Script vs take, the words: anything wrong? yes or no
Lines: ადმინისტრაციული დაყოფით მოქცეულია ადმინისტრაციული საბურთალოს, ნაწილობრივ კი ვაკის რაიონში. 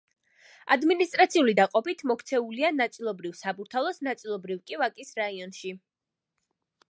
yes